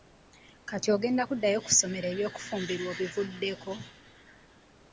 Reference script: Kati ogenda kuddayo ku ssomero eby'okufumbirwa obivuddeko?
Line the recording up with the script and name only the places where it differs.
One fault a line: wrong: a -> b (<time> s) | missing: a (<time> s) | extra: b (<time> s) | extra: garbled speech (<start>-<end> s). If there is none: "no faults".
no faults